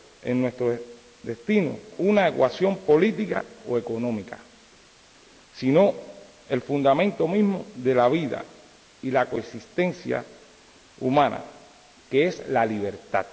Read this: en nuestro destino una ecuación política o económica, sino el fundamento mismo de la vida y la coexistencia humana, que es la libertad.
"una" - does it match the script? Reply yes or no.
yes